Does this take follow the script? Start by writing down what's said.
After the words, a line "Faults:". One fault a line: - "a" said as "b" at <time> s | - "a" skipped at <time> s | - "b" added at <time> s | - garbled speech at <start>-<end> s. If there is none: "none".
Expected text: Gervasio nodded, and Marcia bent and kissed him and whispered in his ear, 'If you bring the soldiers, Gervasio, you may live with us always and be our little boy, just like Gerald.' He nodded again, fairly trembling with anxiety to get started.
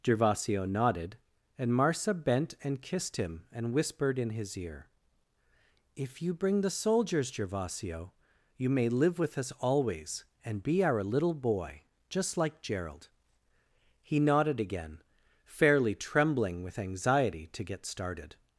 Gervasio nodded, and Marcia bent and kissed him and whispered in his ear, 'If you bring the soldiers, Gervasio, you may live with us always and be our little boy, just like Gerald.' He nodded again, fairly trembling with anxiety to get started.
Faults:
none